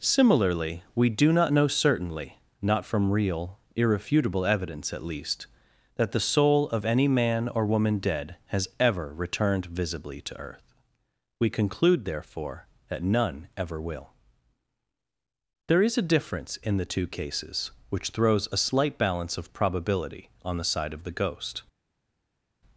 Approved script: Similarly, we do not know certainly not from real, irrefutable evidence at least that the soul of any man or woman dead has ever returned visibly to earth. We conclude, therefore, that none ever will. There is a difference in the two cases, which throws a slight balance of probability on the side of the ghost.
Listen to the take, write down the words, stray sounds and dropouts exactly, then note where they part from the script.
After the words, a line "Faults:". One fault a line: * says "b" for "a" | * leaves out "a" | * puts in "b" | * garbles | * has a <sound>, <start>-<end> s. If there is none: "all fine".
Similarly, we do not know certainly not from real, irrefutable evidence at least that the soul of any man or woman dead has ever returned visibly to earth. We conclude, therefore, that none ever will. There is a difference in the two cases, which throws a slight balance of probability on the side of the ghost.
Faults:
all fine